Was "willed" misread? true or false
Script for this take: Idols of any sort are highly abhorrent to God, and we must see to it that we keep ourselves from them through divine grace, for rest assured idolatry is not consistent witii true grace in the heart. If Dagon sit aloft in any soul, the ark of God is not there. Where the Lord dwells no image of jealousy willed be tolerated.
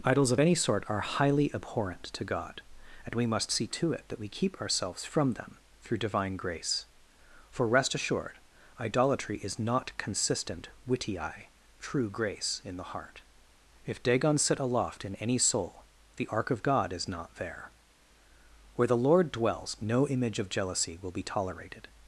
true